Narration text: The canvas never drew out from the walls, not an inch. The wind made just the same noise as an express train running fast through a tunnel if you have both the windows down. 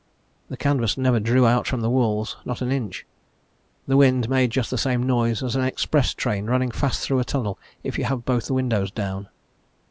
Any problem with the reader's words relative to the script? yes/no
no